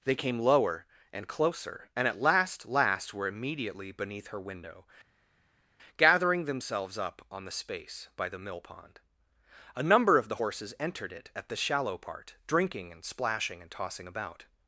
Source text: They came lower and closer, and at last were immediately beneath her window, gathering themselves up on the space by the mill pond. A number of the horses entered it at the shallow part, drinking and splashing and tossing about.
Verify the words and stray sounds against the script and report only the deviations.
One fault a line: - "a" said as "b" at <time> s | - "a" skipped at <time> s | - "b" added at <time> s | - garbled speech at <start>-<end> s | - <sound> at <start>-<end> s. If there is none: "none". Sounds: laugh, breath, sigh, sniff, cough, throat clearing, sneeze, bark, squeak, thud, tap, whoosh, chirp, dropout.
- "last" added at 2.6 s